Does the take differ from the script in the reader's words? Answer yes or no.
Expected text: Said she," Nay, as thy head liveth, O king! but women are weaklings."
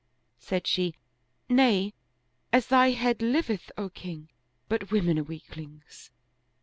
no